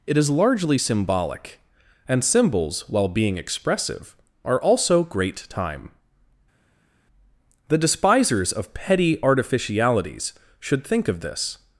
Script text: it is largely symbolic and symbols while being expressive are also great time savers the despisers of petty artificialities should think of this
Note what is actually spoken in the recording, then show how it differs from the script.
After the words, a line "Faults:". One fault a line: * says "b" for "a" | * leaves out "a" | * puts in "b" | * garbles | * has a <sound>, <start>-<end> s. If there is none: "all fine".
it is largely symbolic and symbols while being expressive are also great time the despisers of petty artificialities should think of this
Faults:
* leaves out "savers"